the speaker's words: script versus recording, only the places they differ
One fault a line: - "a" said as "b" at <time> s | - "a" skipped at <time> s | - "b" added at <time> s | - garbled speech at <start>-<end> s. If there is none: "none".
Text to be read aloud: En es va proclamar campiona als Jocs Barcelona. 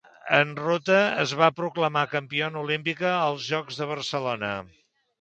- "ruta" added at 0.6 s
- "olímpica" added at 2.6 s
- "de" added at 3.8 s